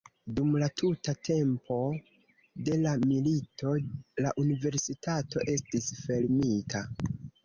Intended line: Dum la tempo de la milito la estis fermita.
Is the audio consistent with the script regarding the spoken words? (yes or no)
no